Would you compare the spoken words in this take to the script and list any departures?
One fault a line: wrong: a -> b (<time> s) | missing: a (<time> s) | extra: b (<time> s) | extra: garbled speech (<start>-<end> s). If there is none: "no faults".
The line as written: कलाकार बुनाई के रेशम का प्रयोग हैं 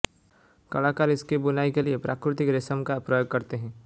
extra: इसकी (1.1 s)
extra: लिए प्राकृतिक (1.8 s)
extra: करते (3.3 s)